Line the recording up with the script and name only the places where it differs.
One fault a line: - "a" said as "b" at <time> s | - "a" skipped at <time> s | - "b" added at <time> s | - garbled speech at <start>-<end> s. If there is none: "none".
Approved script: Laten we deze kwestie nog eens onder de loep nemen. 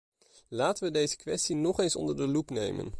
none